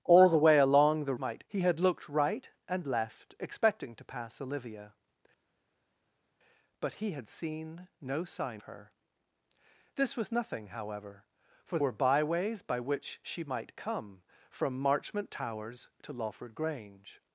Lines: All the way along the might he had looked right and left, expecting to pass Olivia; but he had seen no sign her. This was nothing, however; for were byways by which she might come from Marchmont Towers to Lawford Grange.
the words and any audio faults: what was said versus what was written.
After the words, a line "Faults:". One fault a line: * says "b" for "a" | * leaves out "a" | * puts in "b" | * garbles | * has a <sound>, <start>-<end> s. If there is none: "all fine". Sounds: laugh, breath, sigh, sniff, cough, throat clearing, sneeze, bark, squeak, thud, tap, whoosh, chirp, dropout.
All the way along the might he had looked right and left, expecting to pass Olivia; but he had seen no sign her. This was nothing, however; for were byways by which she might come from Marchmont Towers to Lawford Grange.
Faults:
all fine